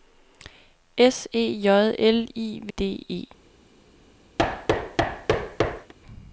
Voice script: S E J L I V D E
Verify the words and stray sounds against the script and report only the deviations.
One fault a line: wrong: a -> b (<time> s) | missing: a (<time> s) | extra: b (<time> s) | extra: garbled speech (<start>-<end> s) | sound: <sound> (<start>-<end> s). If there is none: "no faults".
sound: thud (4.4-5.9 s)